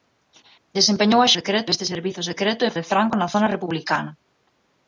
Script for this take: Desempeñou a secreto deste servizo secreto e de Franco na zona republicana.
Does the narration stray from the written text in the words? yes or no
no